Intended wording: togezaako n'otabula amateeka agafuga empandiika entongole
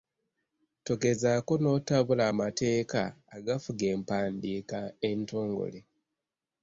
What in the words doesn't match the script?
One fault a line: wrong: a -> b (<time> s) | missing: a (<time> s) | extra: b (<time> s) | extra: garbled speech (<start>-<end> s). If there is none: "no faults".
no faults